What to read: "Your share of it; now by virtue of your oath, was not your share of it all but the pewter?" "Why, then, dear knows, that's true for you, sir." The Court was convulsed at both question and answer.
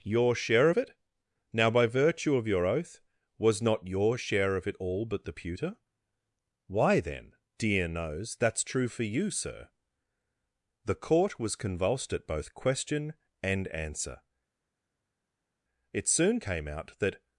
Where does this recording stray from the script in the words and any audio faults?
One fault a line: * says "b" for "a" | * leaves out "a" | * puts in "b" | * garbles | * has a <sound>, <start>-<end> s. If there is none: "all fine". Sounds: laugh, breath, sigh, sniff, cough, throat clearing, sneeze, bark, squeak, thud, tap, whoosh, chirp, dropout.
* puts in "It soon came out that"